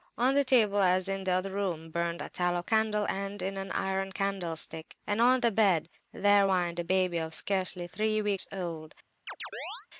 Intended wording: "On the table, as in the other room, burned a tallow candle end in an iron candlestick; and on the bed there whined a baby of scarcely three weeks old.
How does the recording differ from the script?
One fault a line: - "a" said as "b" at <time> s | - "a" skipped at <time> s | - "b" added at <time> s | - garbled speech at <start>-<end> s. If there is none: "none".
none